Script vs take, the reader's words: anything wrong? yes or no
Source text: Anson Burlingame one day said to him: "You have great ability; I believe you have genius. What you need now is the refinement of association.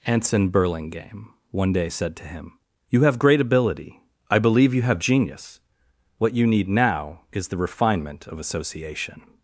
no